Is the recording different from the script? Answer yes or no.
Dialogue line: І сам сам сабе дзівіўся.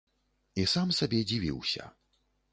yes